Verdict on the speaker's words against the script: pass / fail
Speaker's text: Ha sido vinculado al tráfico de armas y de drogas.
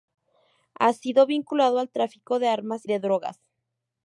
fail